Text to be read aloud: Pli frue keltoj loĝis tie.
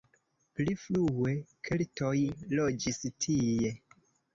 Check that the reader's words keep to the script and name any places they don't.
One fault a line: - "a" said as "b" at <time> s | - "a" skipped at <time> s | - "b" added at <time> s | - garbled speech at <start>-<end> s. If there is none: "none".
none